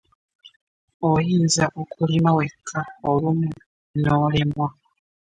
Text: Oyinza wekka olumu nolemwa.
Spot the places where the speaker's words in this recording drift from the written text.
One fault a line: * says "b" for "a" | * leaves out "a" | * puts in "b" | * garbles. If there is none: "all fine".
* puts in "okulima"